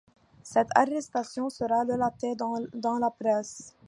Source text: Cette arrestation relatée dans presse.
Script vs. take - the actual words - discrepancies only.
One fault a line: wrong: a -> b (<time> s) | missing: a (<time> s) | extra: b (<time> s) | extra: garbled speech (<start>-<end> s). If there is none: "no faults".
extra: sera (1.5 s)
extra: la (3.0 s)